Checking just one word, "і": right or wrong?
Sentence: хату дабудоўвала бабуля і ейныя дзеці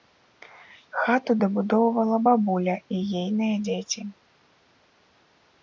right